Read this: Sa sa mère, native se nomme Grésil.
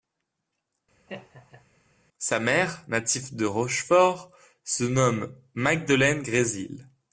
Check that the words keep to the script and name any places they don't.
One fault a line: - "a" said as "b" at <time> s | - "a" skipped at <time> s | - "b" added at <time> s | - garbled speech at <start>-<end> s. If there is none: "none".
- "sa" skipped at 2.4 s
- "de Rochefort" added at 3.3 s
- "Magdelaine" added at 5.5 s